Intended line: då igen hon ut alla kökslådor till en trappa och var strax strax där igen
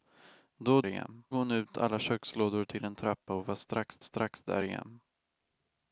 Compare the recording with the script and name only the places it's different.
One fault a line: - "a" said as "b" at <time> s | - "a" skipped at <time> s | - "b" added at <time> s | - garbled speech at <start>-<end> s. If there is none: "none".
none